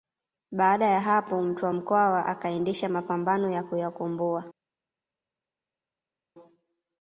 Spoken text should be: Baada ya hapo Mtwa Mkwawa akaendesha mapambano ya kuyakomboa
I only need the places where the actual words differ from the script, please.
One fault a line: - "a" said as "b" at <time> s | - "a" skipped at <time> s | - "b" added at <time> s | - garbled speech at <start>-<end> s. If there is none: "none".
none